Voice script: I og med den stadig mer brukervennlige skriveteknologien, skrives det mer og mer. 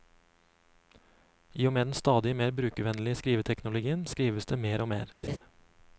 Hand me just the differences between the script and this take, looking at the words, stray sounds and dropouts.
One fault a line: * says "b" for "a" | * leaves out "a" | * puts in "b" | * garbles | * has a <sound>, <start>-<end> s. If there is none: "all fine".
* has a laugh, 5.2-5.4 s